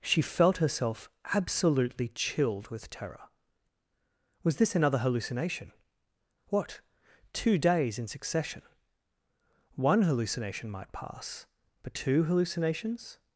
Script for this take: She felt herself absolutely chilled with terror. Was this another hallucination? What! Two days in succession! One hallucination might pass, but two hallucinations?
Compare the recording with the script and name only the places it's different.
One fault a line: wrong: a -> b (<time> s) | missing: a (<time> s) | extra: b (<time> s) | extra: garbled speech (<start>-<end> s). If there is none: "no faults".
no faults